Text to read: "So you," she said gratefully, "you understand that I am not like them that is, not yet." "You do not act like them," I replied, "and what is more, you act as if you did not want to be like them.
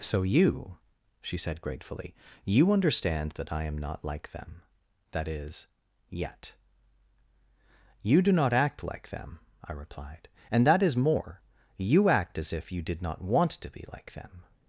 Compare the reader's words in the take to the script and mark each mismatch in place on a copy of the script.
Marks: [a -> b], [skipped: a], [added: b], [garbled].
"So you," she said gratefully, "you understand that I am not like them that is, [skipped: not] yet." "You do not act like them," I replied, "and [what -> that] is more, you act as if you did not want to be like them.